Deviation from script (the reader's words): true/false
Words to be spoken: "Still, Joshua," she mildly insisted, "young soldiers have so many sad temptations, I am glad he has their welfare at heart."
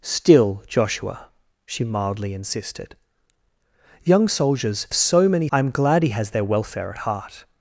true